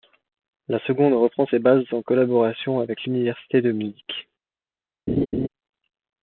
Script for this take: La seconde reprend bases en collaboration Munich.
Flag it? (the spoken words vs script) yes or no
yes